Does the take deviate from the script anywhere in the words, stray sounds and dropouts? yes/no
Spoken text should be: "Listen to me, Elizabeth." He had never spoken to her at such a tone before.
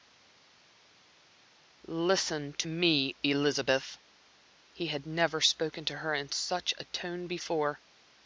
yes